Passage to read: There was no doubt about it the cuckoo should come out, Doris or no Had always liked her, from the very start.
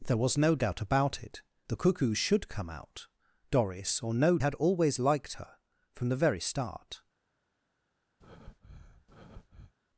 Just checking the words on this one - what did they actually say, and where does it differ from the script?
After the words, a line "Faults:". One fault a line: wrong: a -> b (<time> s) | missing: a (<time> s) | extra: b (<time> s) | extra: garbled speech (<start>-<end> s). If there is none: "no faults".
There was no doubt about it the cuckoo should come out, Doris or no Had always liked her, from the very start.
Faults:
no faults